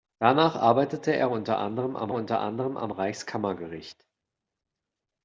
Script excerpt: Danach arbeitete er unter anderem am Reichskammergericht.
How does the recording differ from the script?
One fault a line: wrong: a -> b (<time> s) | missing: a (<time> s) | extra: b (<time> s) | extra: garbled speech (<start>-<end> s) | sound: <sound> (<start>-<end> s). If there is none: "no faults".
extra: unter anderem am (2.1 s)